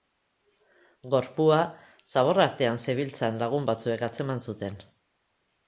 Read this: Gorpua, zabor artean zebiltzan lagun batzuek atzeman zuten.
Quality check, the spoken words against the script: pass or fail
pass